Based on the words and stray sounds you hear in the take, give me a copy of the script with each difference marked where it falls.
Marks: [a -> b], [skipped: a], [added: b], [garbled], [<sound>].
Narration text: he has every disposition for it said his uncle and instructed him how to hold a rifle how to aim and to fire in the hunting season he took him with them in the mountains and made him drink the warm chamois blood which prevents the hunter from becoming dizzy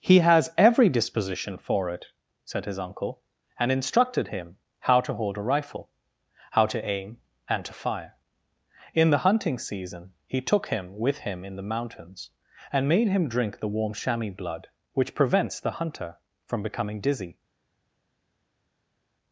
he has every disposition for it said his uncle and instructed him how to hold a rifle how to aim and to fire in the hunting season he took him with [them -> him] in the mountains and made him drink the warm chamois blood which prevents the hunter from becoming dizzy